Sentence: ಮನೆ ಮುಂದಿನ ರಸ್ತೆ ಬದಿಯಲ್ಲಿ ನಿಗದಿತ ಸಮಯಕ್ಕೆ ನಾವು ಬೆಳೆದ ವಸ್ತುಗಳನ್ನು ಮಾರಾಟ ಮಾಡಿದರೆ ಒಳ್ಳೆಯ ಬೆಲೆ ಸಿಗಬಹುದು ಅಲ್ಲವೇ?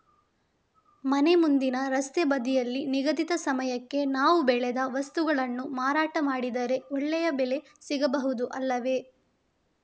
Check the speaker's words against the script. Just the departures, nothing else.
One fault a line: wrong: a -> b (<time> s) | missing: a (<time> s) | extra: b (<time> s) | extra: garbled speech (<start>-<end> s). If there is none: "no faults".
no faults